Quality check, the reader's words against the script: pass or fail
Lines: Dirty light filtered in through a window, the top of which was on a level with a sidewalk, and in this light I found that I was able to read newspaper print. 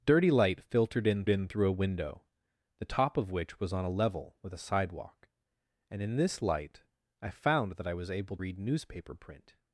fail